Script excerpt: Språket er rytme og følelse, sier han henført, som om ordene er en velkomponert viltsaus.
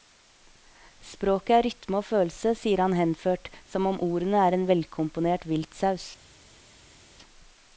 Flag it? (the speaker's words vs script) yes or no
no